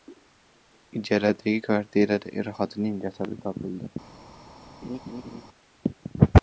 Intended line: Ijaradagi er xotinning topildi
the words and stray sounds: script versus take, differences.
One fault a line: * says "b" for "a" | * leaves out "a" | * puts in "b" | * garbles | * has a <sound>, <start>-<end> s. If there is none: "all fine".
* puts in "kvartirada"
* puts in "jasadi"
* has a laugh, 4.8-5.4 s